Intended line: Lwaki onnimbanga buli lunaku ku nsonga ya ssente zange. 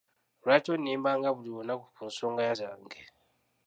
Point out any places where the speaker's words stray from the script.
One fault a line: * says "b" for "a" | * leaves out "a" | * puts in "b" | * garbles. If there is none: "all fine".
* leaves out "ssente"